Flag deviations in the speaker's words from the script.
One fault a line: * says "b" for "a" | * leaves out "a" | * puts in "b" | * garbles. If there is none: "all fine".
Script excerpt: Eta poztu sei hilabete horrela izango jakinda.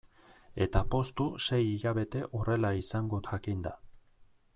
all fine